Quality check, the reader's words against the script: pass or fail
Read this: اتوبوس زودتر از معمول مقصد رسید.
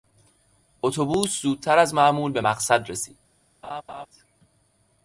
fail